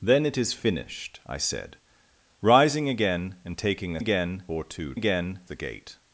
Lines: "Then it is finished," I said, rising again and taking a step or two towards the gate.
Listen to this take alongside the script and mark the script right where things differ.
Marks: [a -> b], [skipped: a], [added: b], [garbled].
"Then it is finished," I said, rising again and taking a [step -> again] or two [towards -> again] the gate.